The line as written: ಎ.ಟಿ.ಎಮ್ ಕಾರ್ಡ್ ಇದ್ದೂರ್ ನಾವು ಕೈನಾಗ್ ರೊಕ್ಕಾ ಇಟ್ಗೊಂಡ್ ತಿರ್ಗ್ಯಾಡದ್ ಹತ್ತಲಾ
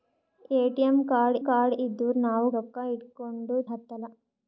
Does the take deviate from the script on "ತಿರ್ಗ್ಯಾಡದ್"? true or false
true